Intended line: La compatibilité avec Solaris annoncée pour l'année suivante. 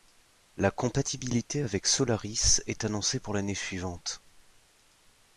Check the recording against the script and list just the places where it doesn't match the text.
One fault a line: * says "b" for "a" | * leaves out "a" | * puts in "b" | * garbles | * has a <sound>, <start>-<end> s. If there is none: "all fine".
* puts in "est"